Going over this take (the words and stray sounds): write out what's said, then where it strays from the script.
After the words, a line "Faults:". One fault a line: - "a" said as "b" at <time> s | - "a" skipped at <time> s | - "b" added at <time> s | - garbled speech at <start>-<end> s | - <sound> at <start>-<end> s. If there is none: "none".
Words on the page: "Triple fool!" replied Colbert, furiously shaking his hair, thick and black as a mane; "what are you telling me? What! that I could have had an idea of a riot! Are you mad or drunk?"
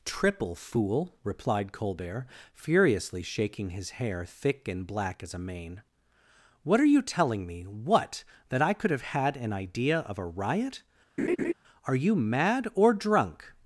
"Triple fool!" replied Colbert, furiously shaking his hair, thick and black as a mane; "what are you telling me? What! that I could have had an idea of a riot! Are you mad or drunk?"
Faults:
- laugh at 11.2-11.5 s